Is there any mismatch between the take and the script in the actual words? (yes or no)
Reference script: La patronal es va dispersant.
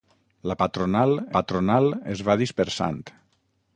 yes